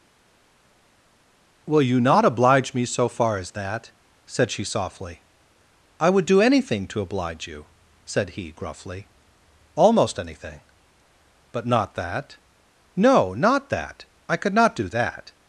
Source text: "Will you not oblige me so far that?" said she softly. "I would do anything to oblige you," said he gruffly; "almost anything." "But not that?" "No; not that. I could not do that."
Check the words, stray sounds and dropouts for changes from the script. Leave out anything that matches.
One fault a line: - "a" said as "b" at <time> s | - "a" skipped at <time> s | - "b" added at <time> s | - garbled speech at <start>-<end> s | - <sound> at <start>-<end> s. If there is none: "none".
- "as" added at 3.4 s